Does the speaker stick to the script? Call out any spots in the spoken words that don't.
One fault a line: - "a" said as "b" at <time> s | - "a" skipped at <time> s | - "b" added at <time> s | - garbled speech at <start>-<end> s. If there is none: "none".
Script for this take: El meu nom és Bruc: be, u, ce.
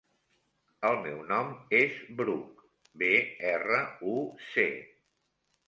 - "erra" added at 3.5 s